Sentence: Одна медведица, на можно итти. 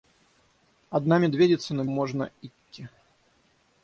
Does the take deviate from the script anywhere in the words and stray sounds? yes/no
no